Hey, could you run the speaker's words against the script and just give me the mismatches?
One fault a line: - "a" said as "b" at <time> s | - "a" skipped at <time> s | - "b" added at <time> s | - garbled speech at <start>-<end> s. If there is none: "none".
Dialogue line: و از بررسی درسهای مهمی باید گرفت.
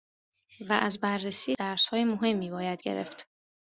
none